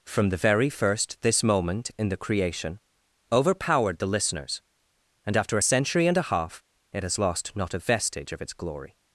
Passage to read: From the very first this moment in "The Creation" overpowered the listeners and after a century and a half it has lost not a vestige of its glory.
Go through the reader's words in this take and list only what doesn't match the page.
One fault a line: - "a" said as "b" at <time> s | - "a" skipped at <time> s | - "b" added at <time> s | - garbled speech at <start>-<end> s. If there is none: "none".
none